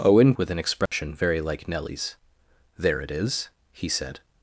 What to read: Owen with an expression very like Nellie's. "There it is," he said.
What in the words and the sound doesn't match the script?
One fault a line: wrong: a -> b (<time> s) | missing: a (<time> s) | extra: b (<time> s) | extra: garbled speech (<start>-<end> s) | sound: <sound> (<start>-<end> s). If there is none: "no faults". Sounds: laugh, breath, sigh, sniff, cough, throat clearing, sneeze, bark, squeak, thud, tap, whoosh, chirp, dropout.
sound: dropout (0.9-0.9 s)